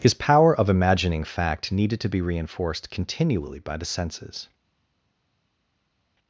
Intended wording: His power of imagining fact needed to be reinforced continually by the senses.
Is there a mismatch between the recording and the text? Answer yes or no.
no